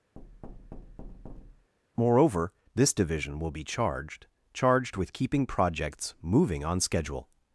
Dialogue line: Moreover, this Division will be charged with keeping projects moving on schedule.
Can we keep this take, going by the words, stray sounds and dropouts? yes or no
no